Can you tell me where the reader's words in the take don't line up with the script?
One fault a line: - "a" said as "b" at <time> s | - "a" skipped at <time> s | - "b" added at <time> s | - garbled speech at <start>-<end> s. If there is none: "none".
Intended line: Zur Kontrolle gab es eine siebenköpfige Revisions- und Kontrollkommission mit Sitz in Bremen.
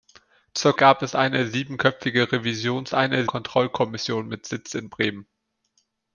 - "Kontrolle" skipped at 0.8 s
- "und" said as "eine" at 2.9 s